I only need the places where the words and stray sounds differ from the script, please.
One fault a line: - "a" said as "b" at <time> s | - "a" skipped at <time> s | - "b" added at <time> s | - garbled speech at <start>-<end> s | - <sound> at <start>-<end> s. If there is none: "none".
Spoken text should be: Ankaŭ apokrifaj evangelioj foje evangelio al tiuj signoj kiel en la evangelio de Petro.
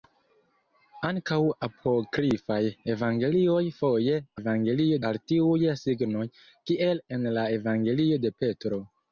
none